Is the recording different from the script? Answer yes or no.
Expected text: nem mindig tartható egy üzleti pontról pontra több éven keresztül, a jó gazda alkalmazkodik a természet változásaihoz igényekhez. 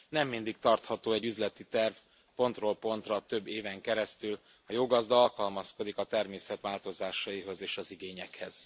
yes